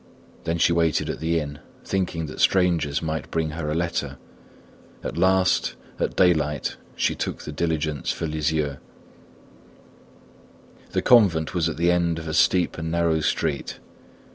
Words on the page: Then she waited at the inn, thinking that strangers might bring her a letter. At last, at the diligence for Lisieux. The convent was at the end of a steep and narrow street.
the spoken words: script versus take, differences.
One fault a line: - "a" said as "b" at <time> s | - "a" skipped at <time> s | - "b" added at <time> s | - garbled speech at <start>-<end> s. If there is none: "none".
- "daylight she took" added at 6.2 s